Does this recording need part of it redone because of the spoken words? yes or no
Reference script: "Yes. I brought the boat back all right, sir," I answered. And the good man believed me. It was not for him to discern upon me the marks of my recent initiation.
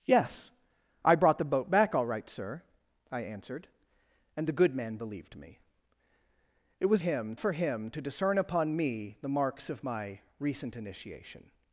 yes